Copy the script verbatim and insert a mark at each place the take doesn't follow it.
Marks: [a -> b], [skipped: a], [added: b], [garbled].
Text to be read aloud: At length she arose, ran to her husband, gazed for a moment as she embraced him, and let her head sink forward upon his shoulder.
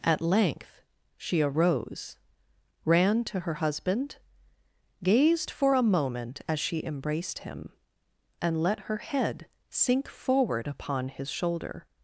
At length she arose, ran to her husband, gazed for a moment as she embraced him, and let her head sink forward upon his shoulder.